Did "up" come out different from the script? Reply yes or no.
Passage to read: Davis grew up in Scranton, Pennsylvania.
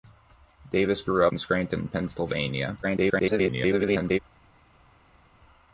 yes